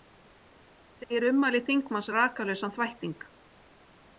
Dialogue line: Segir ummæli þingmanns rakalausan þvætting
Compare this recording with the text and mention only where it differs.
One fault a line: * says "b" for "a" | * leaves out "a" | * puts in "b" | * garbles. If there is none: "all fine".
all fine